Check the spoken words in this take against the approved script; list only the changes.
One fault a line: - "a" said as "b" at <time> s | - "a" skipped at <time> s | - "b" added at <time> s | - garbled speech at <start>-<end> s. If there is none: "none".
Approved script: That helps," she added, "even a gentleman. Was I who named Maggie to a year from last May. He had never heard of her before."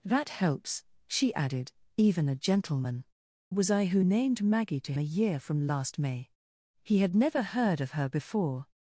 none